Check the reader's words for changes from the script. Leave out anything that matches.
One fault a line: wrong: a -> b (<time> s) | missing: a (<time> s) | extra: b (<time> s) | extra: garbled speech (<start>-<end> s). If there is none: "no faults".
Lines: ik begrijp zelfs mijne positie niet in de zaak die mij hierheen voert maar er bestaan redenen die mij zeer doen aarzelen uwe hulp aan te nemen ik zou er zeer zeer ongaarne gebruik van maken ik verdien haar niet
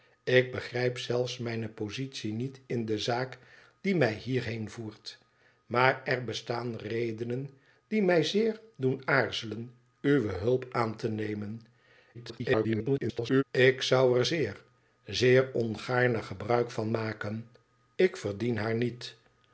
extra: garbled speech (12.1-13.4 s)